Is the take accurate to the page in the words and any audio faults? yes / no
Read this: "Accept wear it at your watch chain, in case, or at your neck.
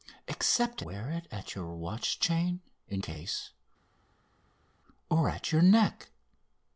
yes